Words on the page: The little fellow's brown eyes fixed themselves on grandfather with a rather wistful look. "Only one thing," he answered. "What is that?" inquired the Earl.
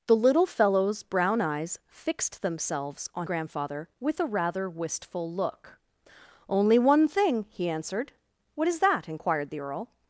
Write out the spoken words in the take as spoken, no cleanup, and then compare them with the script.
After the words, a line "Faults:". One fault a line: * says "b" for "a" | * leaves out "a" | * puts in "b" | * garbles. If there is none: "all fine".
The little fellow's brown eyes fixed themselves on grandfather with a rather wistful look. "Only one thing," he answered. "What is that?" inquired the Earl.
Faults:
all fine